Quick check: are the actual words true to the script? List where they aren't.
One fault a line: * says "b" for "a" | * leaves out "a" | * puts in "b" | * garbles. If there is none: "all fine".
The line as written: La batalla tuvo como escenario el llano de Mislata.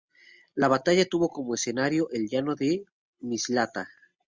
all fine